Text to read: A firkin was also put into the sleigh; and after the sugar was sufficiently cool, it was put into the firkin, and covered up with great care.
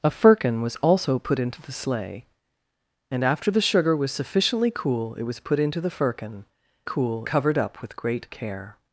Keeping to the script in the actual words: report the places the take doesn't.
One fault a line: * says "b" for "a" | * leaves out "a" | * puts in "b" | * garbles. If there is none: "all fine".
* says "cool" for "and"